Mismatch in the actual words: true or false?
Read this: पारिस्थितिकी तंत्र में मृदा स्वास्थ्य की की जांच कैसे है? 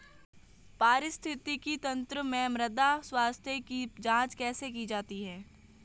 true